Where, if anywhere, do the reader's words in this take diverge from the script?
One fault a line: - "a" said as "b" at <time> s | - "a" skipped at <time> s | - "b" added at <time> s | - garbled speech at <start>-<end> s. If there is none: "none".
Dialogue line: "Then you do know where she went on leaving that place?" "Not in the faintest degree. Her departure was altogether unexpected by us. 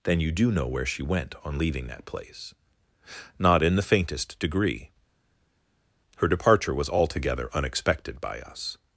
none